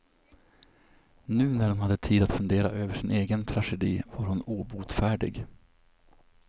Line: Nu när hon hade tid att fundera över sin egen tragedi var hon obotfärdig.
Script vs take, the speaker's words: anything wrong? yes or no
no